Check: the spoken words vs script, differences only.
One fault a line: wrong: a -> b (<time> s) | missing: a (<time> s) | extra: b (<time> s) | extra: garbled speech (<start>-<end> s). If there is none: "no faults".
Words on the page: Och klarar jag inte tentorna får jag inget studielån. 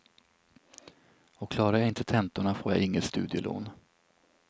no faults